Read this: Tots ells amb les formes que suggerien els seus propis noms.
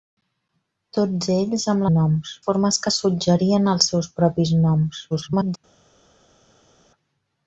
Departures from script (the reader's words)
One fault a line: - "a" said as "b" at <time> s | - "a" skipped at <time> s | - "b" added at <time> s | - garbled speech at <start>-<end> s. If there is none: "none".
- "les" said as "noms" at 1.9 s
- garbled speech at 5.1-5.6 s